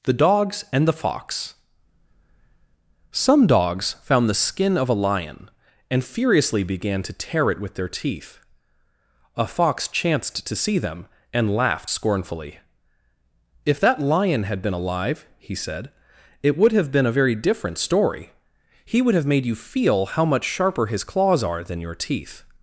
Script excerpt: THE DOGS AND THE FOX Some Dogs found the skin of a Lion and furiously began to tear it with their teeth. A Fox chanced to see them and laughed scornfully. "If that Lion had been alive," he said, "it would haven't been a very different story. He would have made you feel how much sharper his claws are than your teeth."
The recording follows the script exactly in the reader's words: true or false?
false